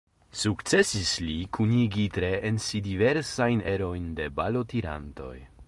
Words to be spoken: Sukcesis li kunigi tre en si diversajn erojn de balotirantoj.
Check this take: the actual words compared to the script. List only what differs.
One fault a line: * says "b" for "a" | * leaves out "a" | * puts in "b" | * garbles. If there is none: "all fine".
all fine